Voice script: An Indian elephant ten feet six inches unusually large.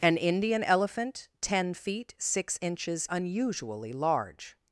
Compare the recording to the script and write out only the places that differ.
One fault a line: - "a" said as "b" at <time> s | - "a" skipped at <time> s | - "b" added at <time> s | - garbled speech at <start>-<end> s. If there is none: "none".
none